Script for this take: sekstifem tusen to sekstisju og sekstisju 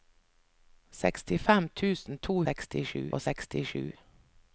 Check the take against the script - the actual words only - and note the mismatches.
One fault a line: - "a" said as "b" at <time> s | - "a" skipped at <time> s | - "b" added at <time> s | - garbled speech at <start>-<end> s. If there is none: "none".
none